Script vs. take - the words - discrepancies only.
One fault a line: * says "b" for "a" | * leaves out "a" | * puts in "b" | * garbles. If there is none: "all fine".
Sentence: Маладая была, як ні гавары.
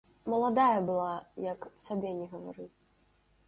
* puts in "сабе"